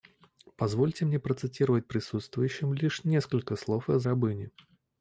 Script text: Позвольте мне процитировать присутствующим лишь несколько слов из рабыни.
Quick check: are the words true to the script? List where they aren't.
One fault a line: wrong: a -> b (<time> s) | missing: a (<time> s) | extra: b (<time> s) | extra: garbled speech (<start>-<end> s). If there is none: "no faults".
no faults